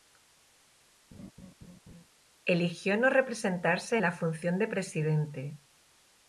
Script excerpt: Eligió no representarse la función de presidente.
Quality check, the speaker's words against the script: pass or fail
pass